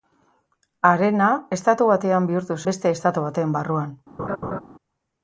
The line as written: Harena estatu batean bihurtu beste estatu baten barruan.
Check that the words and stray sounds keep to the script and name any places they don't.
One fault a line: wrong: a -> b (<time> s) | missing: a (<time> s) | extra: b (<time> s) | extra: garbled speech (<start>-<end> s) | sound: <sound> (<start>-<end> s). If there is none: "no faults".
sound: laugh (4.2-4.6 s)